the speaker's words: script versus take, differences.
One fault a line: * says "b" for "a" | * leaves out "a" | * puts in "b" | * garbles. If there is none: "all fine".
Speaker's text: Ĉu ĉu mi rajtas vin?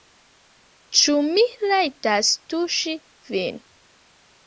* leaves out "ĉu"
* puts in "tuŝi"